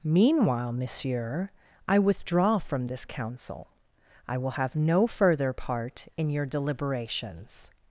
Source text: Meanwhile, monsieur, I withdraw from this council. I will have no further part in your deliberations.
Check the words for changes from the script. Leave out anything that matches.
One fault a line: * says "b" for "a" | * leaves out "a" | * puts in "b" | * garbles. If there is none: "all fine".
all fine